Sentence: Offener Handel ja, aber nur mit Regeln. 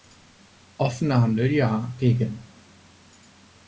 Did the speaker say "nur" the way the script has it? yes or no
no